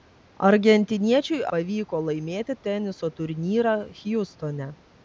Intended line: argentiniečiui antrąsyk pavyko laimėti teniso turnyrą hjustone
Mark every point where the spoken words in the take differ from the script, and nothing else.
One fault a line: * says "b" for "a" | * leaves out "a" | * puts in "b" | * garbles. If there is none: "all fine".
* leaves out "antrąsyk"